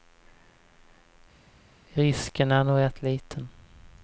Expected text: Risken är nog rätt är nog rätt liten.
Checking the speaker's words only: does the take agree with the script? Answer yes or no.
no